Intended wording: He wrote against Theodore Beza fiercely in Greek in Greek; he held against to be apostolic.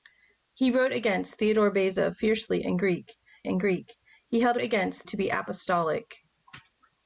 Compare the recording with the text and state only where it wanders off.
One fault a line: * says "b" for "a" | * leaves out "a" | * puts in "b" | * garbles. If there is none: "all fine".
all fine